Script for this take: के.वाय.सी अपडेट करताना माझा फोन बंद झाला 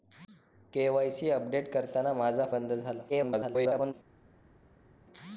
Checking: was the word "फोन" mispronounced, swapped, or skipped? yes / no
yes